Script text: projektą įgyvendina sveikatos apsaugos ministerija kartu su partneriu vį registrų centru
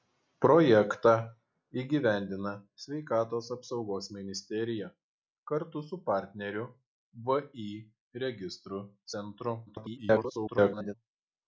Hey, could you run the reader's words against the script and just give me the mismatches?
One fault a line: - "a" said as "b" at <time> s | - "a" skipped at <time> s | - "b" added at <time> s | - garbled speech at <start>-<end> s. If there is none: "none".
- garbled speech at 9.7-10.9 s